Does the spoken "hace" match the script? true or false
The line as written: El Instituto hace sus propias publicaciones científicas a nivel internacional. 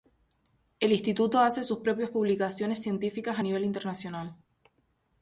true